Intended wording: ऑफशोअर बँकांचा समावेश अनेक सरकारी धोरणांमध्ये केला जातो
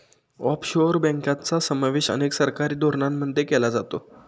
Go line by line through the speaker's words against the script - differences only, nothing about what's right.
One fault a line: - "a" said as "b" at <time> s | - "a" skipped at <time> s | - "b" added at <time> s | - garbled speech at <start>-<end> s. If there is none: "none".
none